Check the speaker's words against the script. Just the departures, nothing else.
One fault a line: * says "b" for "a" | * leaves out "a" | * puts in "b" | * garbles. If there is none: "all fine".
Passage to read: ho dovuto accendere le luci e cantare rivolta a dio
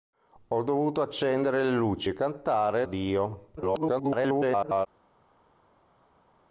* leaves out "rivolta"
* garbles